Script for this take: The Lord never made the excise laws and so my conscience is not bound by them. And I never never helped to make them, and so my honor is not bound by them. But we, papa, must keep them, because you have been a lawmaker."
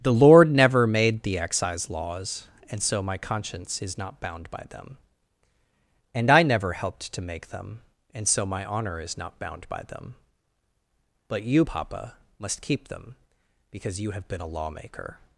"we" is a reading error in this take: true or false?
true